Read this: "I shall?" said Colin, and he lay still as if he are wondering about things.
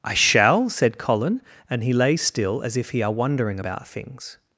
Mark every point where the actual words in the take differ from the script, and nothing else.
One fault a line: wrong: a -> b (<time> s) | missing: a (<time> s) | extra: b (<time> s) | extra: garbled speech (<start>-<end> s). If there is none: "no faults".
no faults